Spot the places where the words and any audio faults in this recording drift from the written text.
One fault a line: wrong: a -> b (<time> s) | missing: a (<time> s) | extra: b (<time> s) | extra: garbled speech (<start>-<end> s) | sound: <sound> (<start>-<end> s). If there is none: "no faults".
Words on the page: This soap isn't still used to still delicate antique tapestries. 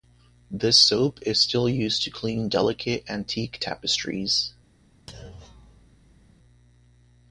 wrong: isn't -> is (1.2 s)
wrong: still -> clean (2.1 s)
sound: thud (5.1-6.4 s)